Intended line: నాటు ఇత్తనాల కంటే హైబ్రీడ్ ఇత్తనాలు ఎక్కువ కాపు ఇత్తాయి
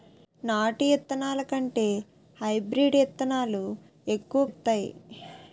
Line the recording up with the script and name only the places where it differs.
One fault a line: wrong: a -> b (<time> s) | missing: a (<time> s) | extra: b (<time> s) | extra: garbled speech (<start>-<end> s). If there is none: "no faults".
missing: కాపు (4.5 s)